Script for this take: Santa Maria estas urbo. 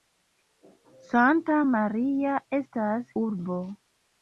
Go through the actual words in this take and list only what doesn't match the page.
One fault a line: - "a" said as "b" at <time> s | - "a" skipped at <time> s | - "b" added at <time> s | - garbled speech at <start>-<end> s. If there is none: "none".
none